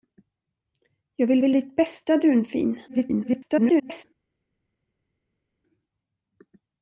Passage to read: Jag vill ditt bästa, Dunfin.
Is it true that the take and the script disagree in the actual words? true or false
true